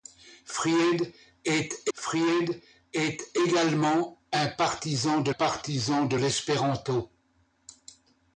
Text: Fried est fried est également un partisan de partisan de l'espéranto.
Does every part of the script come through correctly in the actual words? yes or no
yes